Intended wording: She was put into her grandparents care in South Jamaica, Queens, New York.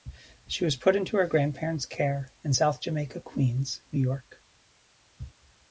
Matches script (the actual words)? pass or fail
pass